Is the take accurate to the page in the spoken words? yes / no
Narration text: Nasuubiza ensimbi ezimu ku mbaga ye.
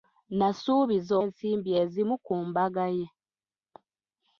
yes